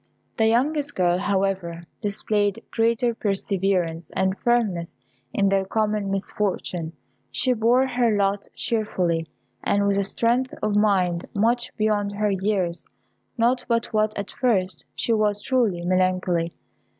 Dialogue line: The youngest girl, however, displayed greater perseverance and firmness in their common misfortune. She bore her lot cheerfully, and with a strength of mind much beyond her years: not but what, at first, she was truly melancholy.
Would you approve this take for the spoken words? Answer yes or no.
yes